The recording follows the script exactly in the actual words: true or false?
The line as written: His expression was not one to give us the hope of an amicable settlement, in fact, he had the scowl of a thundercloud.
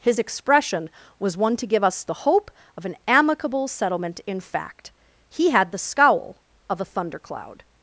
false